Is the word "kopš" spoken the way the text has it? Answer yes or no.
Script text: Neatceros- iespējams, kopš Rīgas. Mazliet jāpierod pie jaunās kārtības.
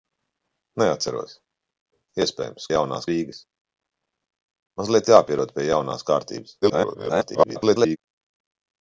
no